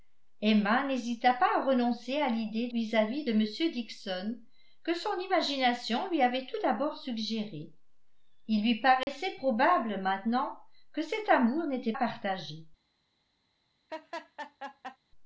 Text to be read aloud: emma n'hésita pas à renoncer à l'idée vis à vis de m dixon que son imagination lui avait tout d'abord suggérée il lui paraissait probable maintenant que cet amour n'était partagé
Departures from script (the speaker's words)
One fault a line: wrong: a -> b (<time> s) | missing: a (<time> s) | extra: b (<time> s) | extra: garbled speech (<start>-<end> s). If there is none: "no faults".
no faults